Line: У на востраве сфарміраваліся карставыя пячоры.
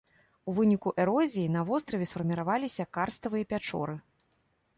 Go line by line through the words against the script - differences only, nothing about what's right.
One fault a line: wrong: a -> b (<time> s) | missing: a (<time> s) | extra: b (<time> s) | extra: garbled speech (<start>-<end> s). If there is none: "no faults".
extra: выніку эрозіі (0.6 s)